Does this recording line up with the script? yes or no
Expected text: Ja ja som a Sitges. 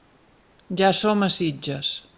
no